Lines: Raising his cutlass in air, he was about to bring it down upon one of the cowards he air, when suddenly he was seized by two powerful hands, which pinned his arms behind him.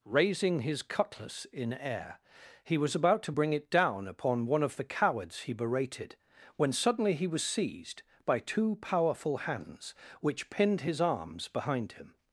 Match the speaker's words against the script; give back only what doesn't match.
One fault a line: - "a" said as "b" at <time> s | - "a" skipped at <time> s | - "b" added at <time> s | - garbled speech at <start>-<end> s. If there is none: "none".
- "air" said as "berated" at 5.5 s